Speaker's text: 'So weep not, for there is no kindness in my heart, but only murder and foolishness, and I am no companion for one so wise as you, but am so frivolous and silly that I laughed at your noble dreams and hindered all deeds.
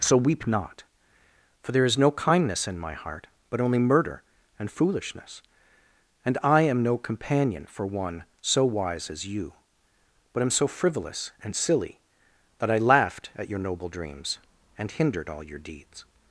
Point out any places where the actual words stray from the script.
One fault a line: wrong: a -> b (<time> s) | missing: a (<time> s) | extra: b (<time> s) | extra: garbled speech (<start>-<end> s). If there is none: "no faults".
extra: your (15.4 s)